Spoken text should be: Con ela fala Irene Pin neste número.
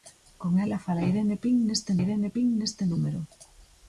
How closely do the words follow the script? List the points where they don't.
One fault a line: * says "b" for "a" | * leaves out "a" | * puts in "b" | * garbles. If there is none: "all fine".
* puts in "Irene Pin neste"